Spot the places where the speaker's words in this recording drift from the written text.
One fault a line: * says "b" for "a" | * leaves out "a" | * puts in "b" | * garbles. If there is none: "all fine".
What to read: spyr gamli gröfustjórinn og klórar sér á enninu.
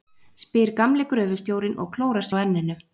* leaves out "sér"